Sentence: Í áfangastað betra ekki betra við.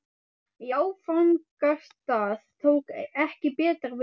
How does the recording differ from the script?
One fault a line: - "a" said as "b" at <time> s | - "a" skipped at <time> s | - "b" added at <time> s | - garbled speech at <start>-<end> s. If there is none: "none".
- "betra" said as "tók" at 2.7 s